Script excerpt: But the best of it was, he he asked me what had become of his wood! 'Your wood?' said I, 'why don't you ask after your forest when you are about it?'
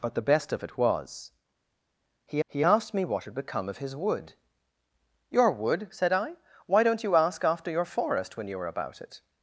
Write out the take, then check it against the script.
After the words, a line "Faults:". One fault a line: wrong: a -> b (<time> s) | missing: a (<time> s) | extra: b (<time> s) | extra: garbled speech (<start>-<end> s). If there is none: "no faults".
But the best of it was, he he asked me what had become of his wood! 'Your wood?' said I, 'why don't you ask after your forest when you are about it?'
Faults:
no faults